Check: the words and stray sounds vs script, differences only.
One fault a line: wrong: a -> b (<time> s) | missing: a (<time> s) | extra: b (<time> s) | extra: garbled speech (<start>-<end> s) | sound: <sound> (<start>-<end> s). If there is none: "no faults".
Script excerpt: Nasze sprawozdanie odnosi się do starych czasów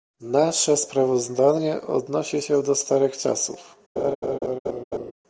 sound: laugh (4.0-5.1 s)